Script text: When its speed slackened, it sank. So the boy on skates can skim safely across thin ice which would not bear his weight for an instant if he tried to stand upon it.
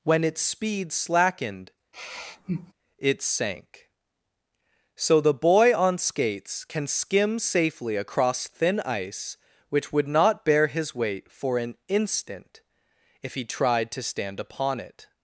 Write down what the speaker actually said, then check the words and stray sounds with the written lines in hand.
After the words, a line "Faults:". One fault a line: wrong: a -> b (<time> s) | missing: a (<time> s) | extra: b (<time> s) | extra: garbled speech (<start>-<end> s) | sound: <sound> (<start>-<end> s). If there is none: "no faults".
When its speed slackened, it sank. So the boy on skates can skim safely across thin ice which would not bear his weight for an instant if he tried to stand upon it.
Faults:
sound: sigh (1.9-2.7 s)